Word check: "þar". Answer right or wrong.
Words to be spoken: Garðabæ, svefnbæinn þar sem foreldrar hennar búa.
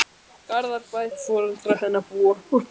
wrong